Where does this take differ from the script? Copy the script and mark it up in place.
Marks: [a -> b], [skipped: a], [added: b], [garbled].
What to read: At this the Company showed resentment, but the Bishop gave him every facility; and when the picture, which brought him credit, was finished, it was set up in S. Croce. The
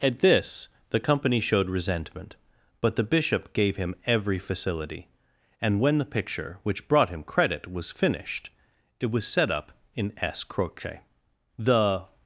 At this the Company showed resentment, but the Bishop gave him every facility; and when the picture, which brought him credit, was finished, it was set up in S. Croce. The